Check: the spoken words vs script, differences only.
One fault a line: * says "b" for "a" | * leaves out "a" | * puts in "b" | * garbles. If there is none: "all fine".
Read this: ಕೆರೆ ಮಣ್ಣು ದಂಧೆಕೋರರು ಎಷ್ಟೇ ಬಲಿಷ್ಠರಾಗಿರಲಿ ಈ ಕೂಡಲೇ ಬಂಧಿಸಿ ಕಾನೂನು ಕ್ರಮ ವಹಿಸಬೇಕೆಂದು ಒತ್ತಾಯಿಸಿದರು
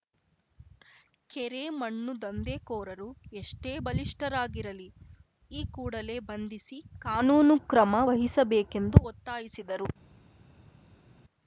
all fine